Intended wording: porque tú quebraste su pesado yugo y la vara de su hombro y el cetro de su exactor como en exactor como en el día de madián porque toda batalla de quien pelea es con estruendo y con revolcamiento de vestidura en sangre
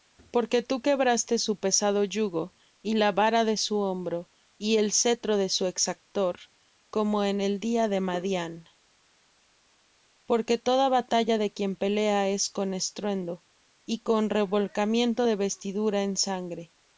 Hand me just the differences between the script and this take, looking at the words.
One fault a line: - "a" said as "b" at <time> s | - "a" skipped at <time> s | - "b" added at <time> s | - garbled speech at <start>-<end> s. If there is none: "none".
- "exactor como en" skipped at 7.4 s